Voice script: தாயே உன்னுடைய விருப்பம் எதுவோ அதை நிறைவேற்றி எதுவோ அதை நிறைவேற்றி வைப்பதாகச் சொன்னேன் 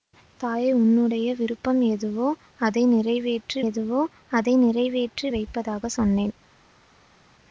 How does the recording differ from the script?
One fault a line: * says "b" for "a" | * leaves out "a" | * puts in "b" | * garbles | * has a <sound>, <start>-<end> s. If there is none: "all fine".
all fine